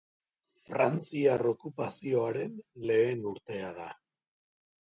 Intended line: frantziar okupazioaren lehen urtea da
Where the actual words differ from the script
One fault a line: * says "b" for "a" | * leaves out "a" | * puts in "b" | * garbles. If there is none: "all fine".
all fine